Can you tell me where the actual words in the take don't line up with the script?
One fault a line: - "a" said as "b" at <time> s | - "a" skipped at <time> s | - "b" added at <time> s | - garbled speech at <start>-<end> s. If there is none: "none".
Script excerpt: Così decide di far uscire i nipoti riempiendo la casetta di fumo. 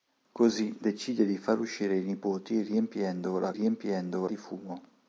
- "casetta" said as "riempiendo" at 3.5 s